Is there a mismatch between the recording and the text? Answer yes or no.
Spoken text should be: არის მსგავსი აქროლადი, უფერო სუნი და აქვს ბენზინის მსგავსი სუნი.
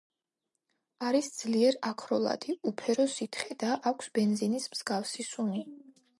yes